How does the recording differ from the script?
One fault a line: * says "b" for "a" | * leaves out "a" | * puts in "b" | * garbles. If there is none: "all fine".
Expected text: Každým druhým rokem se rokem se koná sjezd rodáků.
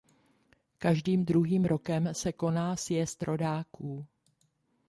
* leaves out "rokem se"